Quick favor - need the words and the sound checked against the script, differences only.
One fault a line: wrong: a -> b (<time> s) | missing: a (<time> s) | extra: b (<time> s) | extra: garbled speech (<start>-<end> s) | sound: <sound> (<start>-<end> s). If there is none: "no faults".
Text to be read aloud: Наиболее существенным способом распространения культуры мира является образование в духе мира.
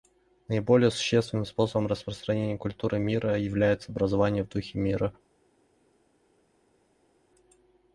no faults